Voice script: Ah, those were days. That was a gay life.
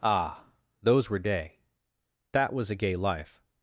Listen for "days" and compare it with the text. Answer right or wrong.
wrong